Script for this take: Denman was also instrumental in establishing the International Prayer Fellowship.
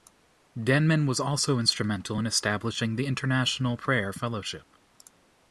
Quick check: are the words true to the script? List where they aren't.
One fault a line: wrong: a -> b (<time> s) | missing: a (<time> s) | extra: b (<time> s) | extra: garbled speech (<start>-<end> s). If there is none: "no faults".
no faults